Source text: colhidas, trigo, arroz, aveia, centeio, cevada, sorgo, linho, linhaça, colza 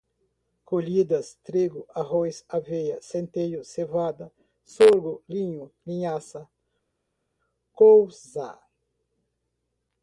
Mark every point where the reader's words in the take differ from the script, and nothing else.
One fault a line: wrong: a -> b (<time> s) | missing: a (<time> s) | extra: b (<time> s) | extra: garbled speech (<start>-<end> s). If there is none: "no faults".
no faults